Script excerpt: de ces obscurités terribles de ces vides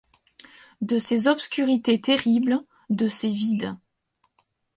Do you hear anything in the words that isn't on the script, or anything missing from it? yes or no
no